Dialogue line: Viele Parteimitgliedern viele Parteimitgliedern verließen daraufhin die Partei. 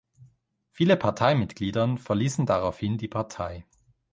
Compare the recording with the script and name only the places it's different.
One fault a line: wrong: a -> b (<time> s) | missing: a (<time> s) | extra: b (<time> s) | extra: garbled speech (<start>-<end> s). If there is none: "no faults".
missing: viele Parteimitgliedern (2.0 s)